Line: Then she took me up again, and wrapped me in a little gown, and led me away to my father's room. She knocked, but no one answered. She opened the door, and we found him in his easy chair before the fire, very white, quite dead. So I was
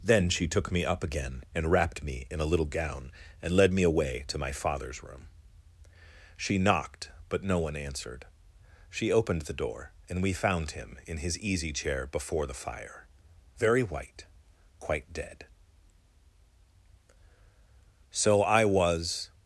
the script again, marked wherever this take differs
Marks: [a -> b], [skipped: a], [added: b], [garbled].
Then she took me up again, and wrapped me in a little gown, and led me away to my father's room. She knocked, but no one answered. She opened the door, and we found him in his easy chair before the fire, very white, quite dead. So I was